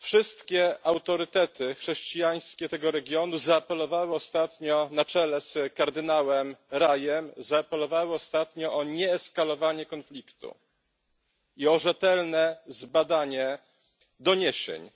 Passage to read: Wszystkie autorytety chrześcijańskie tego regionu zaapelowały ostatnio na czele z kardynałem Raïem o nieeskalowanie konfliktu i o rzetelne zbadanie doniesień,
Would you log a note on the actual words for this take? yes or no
no